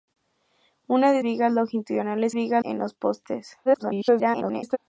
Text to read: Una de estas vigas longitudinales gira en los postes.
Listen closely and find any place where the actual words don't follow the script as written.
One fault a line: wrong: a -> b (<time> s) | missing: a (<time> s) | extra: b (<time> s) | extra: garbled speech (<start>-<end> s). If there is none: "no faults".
missing: estas (1.2 s)
wrong: gira -> vigas (2.3 s)
extra: garbled speech (3.6-4.8 s)